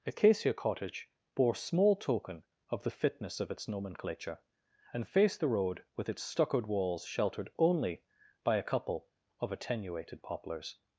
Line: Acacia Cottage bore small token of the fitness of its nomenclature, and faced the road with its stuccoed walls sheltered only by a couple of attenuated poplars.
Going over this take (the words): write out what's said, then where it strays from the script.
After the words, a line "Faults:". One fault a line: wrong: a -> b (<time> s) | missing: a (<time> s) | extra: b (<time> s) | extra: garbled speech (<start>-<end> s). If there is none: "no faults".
Acacia Cottage bore small token of the fitness of its nomenclature, and faced the road with its stuccoed walls sheltered only by a couple of attenuated poplars.
Faults:
no faults